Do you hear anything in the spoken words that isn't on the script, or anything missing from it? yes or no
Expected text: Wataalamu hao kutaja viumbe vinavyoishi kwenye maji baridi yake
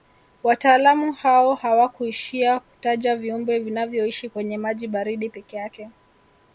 yes